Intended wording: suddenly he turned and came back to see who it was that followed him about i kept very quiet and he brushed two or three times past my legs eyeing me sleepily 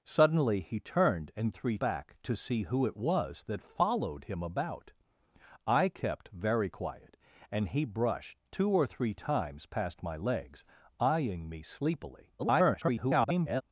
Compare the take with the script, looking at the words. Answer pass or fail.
fail